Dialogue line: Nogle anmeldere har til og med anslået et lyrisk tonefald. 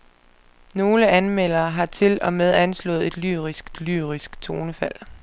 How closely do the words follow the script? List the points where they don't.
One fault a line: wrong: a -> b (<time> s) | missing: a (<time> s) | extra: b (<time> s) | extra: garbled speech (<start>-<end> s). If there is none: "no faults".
extra: et lyrisk (3.7 s)